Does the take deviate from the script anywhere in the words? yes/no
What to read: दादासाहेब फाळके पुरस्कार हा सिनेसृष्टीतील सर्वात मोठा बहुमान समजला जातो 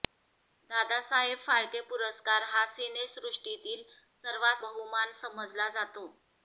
yes